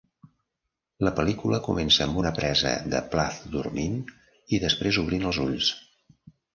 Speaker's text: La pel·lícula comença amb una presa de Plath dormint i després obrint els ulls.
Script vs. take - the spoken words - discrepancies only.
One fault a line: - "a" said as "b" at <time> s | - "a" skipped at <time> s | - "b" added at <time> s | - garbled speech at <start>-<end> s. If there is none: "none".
none